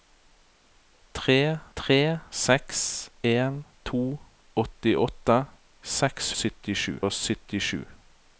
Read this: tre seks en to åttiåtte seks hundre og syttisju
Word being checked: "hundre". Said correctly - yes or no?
no